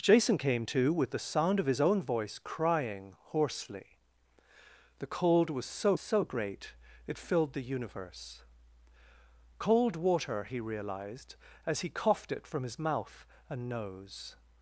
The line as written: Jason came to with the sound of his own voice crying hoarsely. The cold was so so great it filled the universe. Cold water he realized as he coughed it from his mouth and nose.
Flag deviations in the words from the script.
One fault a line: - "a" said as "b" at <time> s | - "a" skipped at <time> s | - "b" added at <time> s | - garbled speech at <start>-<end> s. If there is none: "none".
none